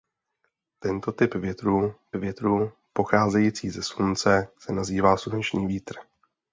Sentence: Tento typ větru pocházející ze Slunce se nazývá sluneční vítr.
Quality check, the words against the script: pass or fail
fail